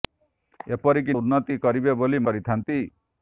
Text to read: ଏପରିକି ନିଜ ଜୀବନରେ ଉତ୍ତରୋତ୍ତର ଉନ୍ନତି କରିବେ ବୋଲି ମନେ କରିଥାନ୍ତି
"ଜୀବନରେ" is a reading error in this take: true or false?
true